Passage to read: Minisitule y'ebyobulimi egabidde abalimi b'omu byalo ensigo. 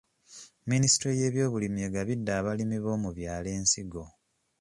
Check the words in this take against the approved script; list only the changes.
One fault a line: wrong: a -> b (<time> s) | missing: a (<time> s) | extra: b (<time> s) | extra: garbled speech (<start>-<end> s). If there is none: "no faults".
no faults